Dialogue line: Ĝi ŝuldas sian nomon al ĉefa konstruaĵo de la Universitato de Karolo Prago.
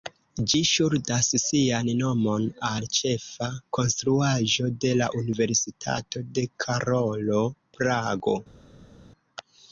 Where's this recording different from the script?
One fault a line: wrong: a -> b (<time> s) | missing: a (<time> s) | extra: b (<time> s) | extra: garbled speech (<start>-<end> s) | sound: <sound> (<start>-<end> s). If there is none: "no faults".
no faults